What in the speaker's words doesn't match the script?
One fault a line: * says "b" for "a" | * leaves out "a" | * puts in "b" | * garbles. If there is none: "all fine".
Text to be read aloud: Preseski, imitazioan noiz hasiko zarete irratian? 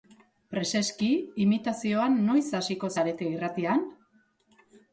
all fine